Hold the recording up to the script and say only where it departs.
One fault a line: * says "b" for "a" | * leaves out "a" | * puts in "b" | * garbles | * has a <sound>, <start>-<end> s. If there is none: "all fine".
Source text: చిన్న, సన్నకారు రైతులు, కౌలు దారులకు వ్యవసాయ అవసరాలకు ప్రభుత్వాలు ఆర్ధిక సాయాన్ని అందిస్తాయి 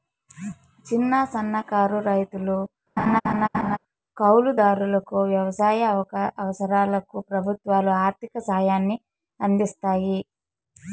* has a laugh, 3.0-3.8 s